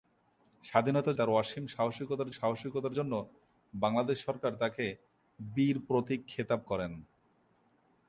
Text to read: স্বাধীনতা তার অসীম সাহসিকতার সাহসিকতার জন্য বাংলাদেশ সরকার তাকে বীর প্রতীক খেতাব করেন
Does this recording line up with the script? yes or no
yes